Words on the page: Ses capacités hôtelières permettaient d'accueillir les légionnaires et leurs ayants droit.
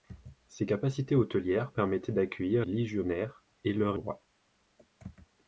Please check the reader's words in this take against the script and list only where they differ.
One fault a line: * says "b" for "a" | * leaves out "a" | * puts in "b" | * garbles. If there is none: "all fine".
* leaves out "les"
* leaves out "ayants"